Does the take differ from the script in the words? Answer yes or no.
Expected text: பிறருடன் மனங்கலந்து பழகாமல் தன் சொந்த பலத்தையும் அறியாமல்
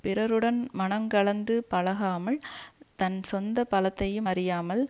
no